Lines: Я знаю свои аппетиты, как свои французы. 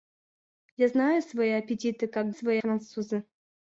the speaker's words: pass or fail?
pass